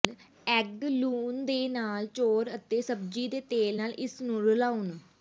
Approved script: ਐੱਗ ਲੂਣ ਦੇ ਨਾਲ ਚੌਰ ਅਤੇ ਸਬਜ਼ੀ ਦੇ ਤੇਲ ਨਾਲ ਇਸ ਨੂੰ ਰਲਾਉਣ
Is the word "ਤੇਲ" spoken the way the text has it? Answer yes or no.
yes